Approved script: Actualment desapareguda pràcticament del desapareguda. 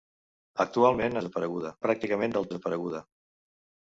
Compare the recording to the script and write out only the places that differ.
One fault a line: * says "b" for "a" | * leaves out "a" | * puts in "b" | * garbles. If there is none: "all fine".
all fine